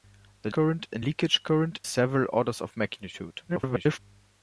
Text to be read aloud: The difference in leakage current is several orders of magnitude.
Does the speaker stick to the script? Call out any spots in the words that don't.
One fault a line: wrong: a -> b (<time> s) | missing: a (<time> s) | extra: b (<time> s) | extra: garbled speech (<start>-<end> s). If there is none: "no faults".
wrong: difference -> current (0.5 s)
missing: is (1.8 s)
extra: garbled speech (3.5-4.0 s)